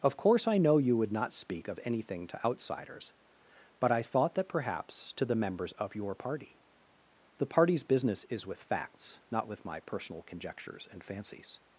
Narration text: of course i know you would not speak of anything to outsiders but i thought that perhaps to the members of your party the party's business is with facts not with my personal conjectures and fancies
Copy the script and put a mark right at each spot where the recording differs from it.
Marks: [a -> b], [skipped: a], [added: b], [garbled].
of course i know you would not speak of anything to outsiders but i thought that perhaps to the members of your party the party's business is with facts not with my personal conjectures and fancies